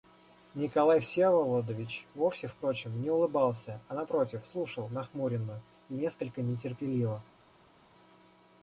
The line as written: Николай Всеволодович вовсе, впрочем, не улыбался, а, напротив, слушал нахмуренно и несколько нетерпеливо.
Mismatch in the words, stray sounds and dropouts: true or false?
false